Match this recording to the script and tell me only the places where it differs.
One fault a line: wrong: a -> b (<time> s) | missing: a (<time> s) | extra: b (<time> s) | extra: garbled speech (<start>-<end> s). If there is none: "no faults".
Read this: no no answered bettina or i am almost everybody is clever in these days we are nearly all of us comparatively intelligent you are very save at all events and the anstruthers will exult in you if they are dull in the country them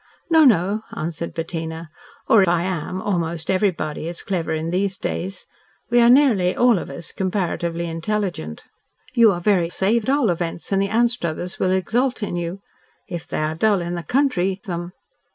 no faults